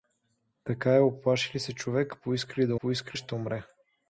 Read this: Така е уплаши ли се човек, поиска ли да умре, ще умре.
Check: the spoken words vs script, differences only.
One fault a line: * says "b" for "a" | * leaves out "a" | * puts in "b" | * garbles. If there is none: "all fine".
* says "поиска" for "умре"